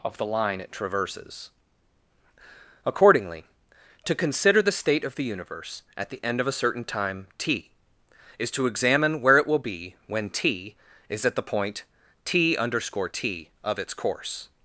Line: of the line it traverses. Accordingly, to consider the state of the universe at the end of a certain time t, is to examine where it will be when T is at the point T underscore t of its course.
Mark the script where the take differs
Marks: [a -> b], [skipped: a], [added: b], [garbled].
of the line it traverses. Accordingly, to consider the state of the universe at the end of a certain time t, is to examine where it will be when T is at the point T underscore t of its course.